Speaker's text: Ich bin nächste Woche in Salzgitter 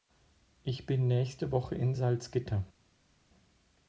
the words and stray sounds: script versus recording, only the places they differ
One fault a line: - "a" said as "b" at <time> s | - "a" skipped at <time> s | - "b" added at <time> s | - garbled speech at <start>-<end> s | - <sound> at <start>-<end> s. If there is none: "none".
none